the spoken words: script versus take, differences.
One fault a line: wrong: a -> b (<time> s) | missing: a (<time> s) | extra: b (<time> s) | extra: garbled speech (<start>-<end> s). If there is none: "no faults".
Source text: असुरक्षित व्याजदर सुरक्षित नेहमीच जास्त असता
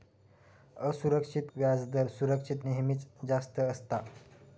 no faults